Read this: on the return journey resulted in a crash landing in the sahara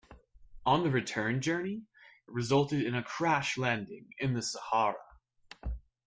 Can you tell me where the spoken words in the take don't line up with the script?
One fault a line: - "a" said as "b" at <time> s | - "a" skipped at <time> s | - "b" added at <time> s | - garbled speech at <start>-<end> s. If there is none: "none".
none